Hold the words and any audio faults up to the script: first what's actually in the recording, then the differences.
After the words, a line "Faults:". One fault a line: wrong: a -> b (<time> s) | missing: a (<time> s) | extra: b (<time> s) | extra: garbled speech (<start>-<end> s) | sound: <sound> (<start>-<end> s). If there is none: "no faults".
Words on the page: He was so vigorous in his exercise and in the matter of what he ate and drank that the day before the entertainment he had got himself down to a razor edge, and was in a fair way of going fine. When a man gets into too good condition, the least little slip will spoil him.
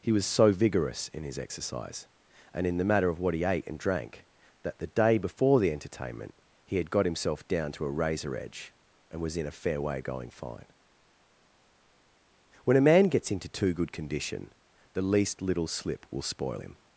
He was so vigorous in his exercise and in the matter of what he ate and drank that the day before the entertainment he had got himself down to a razor edge, and was in a fair way going fine. When a man gets into too good condition, the least little slip will spoil him.
Faults:
missing: of (10.0 s)